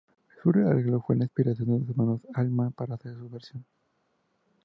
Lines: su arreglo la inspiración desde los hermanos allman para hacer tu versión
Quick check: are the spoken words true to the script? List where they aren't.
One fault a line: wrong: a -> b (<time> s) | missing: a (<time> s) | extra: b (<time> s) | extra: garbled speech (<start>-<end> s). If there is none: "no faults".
extra: fue (1.0 s)
wrong: desde -> de (1.7 s)
wrong: tu -> su (3.2 s)